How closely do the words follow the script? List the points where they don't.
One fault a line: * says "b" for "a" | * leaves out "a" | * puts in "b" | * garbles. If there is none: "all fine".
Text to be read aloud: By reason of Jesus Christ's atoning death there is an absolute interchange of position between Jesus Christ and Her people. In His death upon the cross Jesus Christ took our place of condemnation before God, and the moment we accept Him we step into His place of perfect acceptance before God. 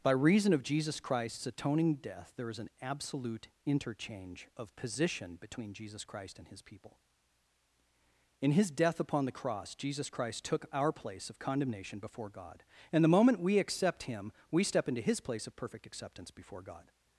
* says "His" for "Her"